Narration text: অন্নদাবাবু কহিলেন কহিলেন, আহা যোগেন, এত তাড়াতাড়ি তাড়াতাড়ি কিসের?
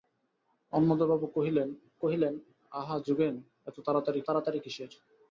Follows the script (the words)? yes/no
yes